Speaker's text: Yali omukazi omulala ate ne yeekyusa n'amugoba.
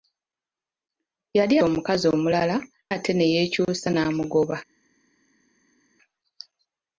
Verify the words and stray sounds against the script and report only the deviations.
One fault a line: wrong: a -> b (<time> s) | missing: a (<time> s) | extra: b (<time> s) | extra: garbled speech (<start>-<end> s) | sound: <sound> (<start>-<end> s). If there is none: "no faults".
no faults